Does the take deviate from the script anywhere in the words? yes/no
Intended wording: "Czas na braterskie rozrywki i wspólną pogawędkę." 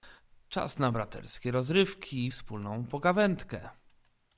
no